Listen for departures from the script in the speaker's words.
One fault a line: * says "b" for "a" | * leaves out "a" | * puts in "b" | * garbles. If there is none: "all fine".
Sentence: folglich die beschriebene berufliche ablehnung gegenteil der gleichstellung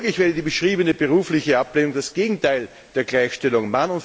* puts in "wäre"
* puts in "das"